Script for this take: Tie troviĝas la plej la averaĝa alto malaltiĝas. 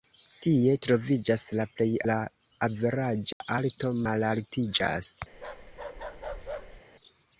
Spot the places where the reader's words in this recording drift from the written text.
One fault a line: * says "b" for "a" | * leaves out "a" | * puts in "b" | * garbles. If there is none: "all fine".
all fine